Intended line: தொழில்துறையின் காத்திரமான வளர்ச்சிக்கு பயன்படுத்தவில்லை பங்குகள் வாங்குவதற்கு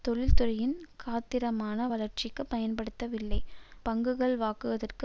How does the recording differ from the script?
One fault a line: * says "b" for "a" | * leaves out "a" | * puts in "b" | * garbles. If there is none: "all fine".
all fine